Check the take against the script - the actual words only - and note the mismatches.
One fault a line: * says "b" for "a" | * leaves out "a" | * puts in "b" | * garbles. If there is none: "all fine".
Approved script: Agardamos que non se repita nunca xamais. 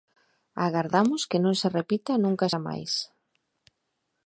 all fine